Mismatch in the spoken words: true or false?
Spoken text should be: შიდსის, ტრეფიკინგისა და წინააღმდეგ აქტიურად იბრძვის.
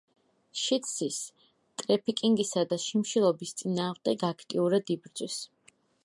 true